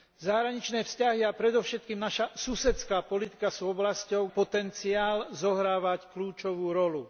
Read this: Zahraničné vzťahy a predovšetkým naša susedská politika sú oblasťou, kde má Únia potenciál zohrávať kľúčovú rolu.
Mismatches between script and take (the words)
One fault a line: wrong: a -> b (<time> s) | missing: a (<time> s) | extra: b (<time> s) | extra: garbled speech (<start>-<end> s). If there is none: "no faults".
missing: kde má Únia (4.3 s)